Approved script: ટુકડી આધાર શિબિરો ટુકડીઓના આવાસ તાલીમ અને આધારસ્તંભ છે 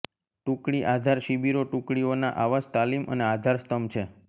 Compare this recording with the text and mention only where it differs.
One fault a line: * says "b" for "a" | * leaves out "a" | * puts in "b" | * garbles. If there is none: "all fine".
all fine